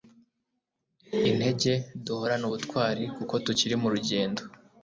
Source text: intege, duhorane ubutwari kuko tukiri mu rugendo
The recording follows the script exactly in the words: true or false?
true